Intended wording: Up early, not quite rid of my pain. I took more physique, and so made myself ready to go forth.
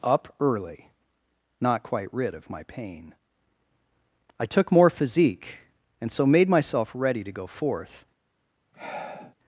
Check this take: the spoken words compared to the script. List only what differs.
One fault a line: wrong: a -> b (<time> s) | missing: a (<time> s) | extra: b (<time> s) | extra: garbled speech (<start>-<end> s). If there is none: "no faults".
no faults